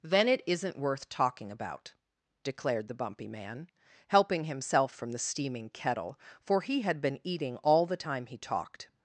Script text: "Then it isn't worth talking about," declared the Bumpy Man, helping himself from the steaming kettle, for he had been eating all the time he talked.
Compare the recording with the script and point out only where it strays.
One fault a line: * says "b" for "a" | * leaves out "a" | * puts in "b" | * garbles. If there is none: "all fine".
all fine